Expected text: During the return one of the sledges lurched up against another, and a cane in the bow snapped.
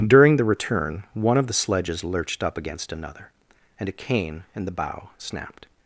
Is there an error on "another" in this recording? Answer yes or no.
no